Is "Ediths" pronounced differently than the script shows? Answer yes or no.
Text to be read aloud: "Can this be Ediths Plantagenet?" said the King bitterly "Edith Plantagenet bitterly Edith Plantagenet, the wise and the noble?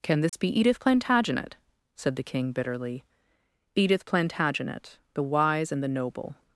yes